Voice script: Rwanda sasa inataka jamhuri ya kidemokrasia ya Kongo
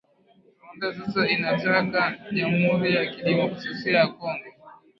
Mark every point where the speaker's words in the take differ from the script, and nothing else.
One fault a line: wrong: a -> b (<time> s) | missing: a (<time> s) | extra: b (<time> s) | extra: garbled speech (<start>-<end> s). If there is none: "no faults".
no faults